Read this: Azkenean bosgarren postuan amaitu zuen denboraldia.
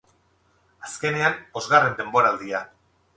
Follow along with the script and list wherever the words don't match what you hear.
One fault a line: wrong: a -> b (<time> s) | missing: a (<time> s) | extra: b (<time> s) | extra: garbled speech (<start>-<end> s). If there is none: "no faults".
missing: postuan amaitu zuen (1.9 s)